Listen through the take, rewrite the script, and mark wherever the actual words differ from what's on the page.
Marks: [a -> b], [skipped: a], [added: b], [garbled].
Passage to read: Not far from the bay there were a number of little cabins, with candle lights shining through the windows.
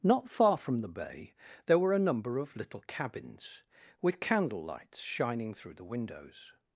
Not far from the bay there were a number of little cabins, with candle lights shining through the windows.